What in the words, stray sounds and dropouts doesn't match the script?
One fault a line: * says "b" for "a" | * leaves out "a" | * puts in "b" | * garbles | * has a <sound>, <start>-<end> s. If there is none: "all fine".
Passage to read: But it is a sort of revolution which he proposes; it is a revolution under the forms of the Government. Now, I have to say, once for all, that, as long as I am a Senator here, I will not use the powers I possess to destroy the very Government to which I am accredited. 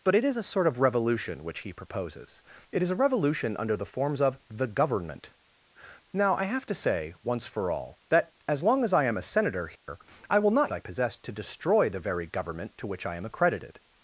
* has a dropout, 9.8-9.9 s
* leaves out "use the powers"